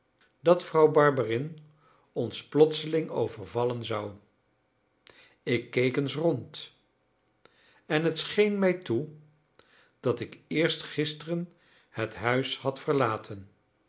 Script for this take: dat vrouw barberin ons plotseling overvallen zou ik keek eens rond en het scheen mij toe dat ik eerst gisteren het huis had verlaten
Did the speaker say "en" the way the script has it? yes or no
yes